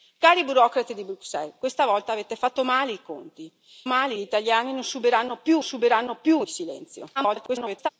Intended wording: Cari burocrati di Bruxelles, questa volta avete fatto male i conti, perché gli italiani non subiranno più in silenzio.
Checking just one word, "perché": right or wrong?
wrong